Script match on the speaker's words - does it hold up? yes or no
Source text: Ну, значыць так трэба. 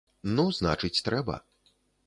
no